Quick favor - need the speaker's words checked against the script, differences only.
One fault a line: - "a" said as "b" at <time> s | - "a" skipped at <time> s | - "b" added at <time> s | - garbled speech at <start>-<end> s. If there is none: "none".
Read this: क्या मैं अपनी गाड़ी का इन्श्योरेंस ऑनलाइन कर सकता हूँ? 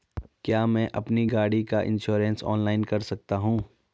none